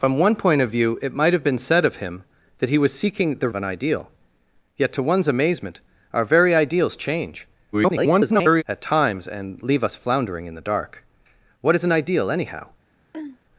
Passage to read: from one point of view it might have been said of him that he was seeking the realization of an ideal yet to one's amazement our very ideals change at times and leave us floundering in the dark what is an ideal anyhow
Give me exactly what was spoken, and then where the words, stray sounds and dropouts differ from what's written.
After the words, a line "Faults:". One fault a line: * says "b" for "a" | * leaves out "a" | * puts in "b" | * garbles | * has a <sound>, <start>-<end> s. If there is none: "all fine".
from one point of view it might have been said of him that he was seeking the of an ideal yet to one's amazement our very ideals change [garbled] at times and leave us floundering in the dark what is an ideal anyhow
Faults:
* leaves out "realization"
* garbles
* has a throat clearing, 13.1-13.4 s